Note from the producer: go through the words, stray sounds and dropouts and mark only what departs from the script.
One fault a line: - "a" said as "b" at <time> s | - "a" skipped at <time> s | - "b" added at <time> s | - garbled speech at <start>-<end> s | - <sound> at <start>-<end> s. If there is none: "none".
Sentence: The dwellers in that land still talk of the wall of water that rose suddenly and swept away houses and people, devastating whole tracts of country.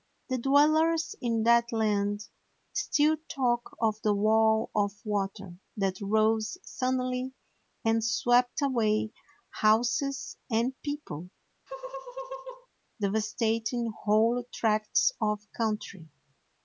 - laugh at 11.7-12.7 s